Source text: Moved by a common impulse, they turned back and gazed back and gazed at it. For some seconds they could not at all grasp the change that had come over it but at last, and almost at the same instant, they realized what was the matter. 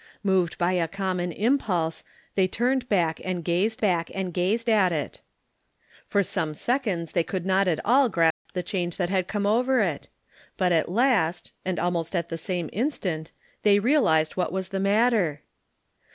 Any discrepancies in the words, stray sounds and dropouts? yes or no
yes